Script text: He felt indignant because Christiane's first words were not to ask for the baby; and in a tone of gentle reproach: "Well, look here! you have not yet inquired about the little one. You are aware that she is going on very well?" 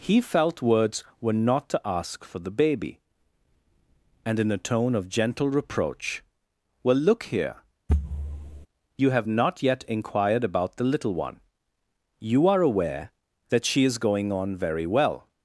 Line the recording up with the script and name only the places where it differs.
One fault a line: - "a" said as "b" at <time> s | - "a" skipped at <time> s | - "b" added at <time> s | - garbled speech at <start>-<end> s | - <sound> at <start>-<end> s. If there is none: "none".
- "indignant because Christiane's first" skipped at 0.6 s
- thud at 7.9-8.7 s